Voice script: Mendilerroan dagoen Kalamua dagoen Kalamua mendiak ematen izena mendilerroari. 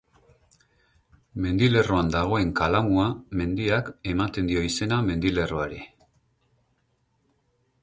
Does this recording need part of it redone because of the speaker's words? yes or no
yes